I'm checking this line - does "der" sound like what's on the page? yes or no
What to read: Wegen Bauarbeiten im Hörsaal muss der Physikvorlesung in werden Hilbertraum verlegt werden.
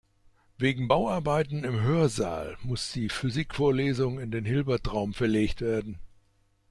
no